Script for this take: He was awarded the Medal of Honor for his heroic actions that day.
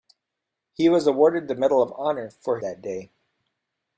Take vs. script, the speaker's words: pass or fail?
fail